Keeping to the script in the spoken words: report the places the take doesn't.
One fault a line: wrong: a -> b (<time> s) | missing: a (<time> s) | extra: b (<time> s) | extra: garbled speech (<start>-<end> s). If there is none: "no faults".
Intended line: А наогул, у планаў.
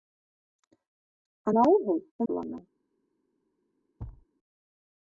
no faults